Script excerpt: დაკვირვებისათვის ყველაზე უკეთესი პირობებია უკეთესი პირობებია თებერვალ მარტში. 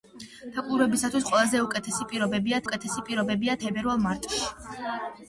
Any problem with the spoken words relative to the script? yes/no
no